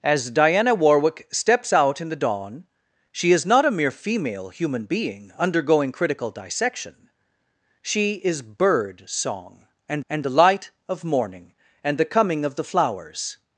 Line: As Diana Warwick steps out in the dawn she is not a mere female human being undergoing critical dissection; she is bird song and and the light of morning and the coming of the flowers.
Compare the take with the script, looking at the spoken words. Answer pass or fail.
pass